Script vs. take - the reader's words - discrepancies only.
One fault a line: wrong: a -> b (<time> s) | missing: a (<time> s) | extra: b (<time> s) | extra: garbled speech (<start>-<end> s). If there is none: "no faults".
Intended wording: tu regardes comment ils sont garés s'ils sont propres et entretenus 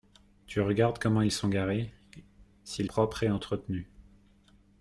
missing: sont (2.9 s)